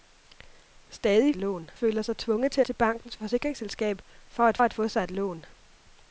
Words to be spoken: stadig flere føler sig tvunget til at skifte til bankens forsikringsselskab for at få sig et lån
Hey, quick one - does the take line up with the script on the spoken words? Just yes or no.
no